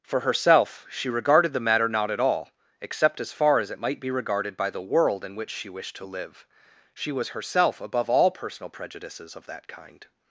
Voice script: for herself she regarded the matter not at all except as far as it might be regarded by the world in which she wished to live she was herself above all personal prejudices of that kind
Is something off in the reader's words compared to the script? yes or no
no